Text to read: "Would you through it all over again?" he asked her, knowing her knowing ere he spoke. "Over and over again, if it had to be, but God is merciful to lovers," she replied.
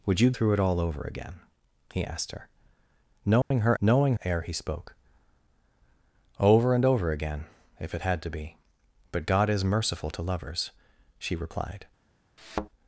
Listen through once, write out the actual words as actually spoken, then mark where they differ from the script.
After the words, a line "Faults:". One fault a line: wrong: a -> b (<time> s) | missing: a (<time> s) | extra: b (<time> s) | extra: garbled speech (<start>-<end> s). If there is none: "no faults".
"Would you through it all over again?" he asked her, knowing her knowing ere he spoke. "Over and over again, if it had to be, but God is merciful to lovers," she replied.
Faults:
no faults